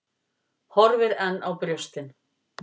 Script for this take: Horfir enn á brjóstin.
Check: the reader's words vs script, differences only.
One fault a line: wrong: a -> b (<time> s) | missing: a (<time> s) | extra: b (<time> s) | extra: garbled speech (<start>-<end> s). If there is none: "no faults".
no faults